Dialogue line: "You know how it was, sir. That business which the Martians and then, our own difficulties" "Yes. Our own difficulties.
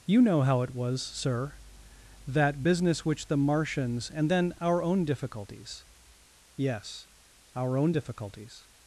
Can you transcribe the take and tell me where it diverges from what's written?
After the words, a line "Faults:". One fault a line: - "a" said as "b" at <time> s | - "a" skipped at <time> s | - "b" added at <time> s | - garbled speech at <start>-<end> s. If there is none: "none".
"You know how it was, sir. That business which the Martians and then, our own difficulties" "Yes. Our own difficulties.
Faults:
none